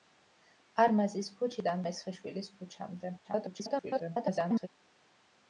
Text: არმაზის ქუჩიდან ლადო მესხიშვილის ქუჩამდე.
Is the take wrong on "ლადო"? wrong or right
wrong